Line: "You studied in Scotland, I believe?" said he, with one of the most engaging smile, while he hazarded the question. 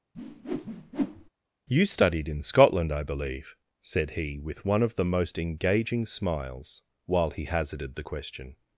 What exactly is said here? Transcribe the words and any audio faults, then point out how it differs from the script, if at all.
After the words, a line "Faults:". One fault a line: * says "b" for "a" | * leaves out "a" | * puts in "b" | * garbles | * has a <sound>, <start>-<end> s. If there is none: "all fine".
"You studied in Scotland, I believe?" said he, with one of the most engaging smiles, while he hazarded the question.
Faults:
* has a whoosh, 0.1-1.3 s
* says "smiles" for "smile"